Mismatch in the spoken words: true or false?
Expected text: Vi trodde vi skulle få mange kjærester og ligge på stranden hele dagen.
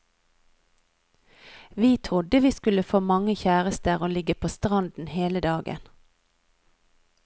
false